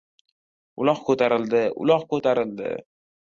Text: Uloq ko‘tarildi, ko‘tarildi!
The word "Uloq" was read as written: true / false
true